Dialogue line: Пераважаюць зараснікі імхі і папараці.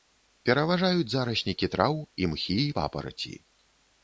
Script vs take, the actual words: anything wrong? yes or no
yes